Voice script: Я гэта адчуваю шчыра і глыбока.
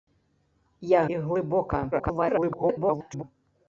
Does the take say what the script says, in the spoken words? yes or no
no